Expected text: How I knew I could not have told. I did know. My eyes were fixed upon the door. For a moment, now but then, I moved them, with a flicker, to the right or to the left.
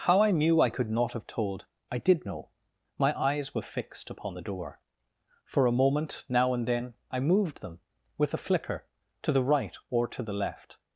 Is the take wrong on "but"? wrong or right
wrong